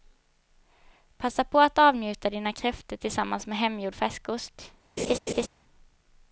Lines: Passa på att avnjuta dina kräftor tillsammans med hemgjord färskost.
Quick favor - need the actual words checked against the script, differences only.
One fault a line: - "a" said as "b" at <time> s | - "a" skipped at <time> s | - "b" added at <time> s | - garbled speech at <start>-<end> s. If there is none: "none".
none